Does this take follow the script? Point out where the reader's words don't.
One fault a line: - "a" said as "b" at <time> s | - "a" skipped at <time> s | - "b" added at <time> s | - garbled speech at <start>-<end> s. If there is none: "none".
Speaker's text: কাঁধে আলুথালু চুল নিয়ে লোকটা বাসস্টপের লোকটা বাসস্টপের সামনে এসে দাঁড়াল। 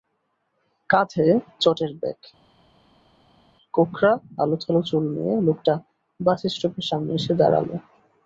- "চটের ব্যাগ কোঁকড়া" added at 1.6 s
- "লোকটা বাসস্টপের" skipped at 6.9 s